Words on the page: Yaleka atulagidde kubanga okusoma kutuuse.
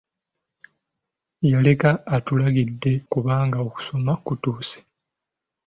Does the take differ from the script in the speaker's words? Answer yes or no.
no